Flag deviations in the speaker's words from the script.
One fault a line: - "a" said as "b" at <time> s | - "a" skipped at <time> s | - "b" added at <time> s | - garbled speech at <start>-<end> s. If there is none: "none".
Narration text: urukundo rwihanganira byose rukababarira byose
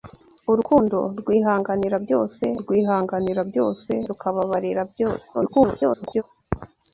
- "rwihanganira byose" added at 2.6 s
- garbled speech at 5.3-6.2 s